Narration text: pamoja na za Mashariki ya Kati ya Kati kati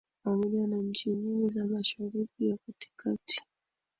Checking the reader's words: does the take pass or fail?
fail